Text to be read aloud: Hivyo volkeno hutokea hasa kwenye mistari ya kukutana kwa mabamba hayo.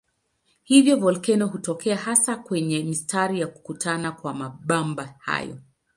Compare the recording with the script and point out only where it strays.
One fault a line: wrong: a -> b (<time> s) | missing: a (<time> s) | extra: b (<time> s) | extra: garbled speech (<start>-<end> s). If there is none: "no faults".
no faults